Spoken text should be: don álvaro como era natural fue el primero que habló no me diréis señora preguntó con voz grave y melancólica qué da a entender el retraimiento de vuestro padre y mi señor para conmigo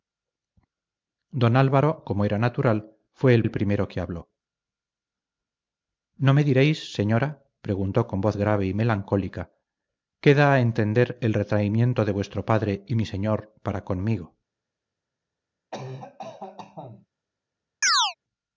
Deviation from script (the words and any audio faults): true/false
true